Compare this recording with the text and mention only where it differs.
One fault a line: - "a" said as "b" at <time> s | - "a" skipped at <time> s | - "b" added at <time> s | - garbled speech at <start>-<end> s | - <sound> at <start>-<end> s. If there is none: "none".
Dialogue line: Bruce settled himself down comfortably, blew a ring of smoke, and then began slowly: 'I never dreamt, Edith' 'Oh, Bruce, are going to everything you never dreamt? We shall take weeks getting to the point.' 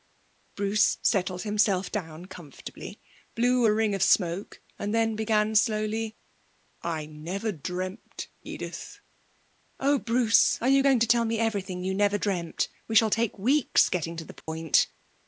- "you" added at 10.7 s
- "tell me" added at 11.1 s
- dropout at 14.4-14.5 s